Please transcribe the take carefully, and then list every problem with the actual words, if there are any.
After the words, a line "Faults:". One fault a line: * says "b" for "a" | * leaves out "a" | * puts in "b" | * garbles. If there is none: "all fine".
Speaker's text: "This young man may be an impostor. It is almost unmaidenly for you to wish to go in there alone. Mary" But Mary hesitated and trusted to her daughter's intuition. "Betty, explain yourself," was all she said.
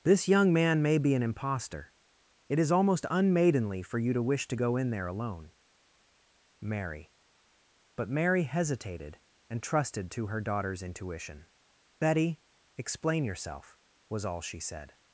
"This young man may be an impostor. It is almost unmaidenly for you to wish to go in there alone. Mary" But Mary hesitated and trusted to her daughter's intuition. "Betty, explain yourself," was all she said.
Faults:
all fine